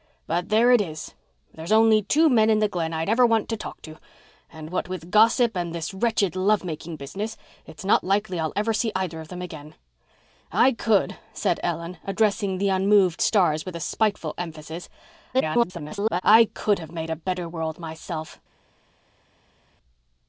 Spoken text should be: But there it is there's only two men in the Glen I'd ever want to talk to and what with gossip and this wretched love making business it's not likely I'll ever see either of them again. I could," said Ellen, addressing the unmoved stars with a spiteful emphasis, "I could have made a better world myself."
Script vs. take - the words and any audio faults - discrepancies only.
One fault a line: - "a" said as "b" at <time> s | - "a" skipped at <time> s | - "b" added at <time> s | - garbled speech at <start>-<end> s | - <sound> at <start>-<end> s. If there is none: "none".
- garbled speech at 15.3-16.2 s